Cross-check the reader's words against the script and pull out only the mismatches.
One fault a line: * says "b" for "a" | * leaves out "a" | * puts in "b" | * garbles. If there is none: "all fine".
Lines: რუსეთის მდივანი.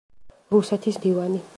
all fine